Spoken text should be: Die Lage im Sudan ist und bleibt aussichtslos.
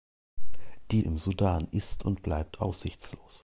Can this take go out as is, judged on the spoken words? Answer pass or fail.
fail